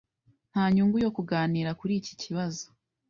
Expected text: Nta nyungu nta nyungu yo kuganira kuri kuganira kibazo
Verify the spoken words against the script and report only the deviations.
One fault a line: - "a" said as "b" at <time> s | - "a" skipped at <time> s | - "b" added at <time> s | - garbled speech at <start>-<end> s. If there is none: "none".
- "nta nyungu" skipped at 1.0 s
- "kuganira" said as "iki" at 2.0 s